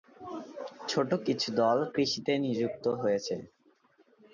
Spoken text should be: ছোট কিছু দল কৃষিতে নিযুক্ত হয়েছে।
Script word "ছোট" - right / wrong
right